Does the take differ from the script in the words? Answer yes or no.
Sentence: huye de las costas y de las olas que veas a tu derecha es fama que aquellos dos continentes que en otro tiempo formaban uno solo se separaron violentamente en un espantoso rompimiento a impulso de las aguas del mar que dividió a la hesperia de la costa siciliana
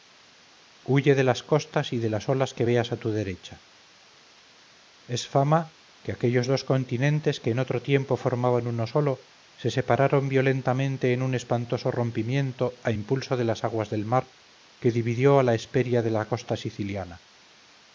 no